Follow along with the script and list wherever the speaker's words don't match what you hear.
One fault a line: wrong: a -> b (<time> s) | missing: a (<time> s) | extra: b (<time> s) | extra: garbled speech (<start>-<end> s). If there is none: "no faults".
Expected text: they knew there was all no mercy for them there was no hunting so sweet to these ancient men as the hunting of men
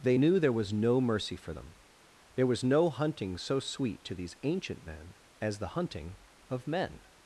missing: all (0.7 s)